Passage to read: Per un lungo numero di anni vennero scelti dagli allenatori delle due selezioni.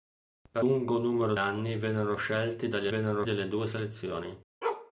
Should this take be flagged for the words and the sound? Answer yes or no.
yes